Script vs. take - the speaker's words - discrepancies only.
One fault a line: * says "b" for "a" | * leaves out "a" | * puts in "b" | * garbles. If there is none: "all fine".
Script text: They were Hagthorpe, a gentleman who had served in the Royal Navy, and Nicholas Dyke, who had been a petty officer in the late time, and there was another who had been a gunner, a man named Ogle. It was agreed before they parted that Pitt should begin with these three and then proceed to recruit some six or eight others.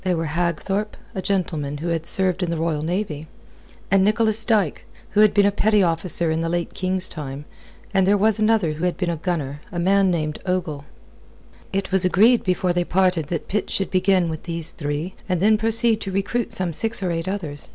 * puts in "king's"